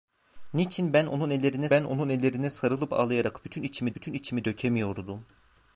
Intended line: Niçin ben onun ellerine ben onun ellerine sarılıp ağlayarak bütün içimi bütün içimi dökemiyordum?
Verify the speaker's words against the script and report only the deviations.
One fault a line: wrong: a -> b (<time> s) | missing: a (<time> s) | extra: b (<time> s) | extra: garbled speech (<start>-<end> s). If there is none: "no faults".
no faults